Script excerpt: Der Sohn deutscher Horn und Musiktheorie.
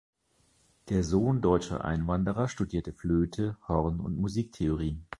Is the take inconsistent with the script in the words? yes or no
yes